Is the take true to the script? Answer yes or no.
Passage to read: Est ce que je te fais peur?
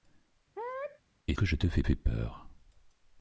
no